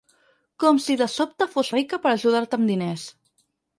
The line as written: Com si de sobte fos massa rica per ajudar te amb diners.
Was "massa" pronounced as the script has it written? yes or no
no